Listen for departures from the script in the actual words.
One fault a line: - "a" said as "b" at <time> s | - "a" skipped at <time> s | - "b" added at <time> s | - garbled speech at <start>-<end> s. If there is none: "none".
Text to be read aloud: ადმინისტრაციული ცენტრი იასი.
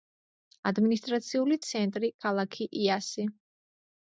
- "ქალაქი" added at 2.3 s